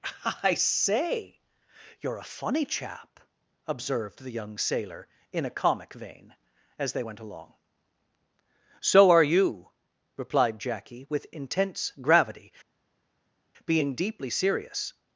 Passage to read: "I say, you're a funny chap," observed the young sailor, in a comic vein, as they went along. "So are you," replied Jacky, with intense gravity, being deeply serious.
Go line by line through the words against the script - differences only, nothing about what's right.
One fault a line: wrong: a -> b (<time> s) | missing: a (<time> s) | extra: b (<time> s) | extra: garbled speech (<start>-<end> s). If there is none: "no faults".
no faults